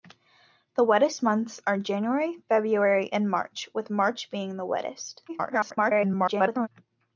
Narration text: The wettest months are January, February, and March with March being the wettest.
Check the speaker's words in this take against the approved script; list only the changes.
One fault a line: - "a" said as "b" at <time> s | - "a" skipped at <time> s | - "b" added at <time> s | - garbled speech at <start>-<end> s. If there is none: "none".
- garbled speech at 5.3-6.7 s